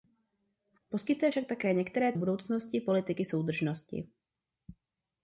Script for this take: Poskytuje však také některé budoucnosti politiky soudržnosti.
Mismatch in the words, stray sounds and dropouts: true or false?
false